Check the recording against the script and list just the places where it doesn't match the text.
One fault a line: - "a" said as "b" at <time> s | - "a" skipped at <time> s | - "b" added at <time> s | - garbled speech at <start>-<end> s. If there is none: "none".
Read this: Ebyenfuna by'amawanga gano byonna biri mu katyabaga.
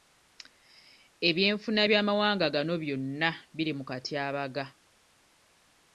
none